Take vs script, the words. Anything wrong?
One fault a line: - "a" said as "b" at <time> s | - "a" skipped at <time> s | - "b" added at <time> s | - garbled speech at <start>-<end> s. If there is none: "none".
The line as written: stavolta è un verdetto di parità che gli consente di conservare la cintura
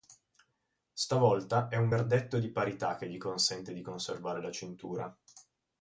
none